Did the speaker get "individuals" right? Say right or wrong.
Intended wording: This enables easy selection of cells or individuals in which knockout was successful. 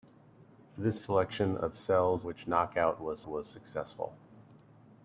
wrong